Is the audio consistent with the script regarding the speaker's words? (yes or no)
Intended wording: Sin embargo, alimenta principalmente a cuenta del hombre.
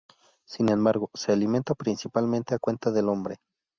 no